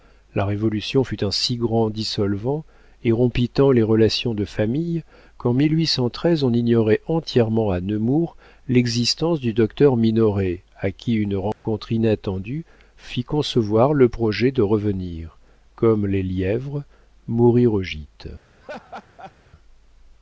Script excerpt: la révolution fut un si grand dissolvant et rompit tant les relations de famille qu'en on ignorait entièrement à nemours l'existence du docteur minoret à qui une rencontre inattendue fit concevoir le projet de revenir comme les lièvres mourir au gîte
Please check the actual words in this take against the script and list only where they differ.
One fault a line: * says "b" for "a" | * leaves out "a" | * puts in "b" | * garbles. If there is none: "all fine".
all fine